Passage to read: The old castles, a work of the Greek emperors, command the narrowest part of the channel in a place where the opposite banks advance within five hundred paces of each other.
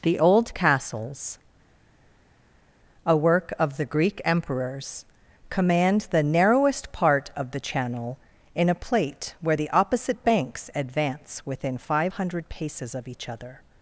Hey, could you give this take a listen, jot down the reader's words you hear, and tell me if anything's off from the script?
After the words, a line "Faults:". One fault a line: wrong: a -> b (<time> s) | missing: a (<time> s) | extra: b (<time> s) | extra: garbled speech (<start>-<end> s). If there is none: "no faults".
The old castles, a work of the Greek emperors, command the narrowest part of the channel in a plate where the opposite banks advance within five hundred paces of each other.
Faults:
wrong: place -> plate (8.7 s)